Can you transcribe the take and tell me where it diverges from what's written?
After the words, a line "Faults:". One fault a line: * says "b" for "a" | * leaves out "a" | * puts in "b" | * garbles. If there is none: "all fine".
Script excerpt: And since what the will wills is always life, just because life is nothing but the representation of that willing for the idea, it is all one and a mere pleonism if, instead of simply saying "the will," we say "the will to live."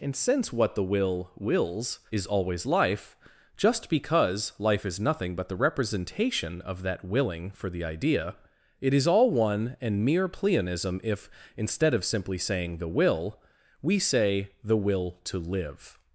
And since what the will wills is always life, just because life is nothing but the representation of that willing for the idea, it is all one and mere pleonism if, instead of simply saying "the will," we say "the will to live."
Faults:
* leaves out "a"